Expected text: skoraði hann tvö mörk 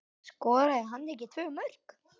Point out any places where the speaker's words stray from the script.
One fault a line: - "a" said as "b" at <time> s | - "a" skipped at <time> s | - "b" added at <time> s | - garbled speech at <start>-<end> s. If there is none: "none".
- "ekki" added at 1.2 s